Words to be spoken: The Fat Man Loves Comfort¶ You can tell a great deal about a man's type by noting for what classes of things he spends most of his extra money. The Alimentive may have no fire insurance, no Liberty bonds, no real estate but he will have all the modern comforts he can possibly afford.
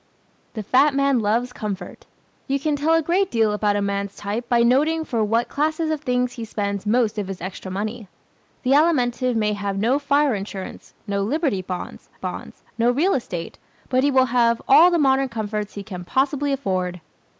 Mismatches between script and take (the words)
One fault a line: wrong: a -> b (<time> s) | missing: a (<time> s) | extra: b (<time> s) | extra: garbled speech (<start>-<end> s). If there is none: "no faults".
extra: bonds (12.1 s)